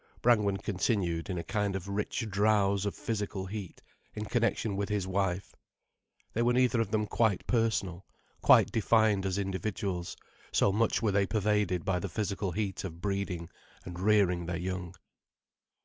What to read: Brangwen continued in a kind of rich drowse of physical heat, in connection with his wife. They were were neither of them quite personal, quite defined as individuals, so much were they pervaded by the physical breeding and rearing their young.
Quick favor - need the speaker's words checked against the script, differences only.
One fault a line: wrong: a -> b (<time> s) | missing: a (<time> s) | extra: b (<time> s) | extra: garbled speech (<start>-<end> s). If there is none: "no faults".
missing: were (6.5 s)
extra: heat of (12.5 s)